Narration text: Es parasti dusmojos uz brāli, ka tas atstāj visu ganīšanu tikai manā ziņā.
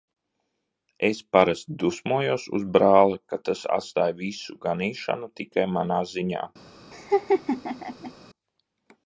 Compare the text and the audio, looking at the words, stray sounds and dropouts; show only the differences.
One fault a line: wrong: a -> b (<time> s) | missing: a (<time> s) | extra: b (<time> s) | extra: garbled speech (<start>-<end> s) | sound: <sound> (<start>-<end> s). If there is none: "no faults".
sound: laugh (6.9-8.1 s)